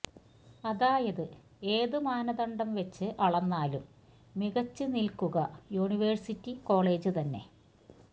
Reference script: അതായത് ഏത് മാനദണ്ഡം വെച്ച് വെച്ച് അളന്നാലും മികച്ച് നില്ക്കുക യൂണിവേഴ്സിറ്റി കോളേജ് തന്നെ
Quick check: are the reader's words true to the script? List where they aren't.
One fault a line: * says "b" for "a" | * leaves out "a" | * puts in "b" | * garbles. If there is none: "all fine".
* leaves out "വെച്ച്"